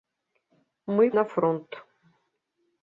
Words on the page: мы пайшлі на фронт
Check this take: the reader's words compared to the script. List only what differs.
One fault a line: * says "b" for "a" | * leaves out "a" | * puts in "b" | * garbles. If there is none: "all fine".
* leaves out "пайшлі"